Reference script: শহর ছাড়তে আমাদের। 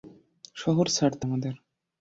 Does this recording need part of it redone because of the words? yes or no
no